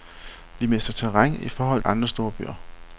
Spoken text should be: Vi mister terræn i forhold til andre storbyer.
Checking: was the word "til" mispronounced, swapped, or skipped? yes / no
yes